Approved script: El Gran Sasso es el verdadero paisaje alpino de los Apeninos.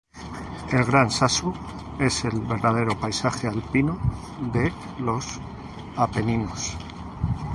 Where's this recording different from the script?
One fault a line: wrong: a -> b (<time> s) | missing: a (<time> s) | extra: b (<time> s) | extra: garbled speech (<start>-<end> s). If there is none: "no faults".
no faults